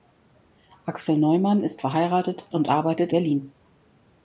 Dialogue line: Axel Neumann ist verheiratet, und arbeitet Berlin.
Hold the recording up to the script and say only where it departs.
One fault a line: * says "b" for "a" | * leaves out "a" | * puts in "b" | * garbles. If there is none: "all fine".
all fine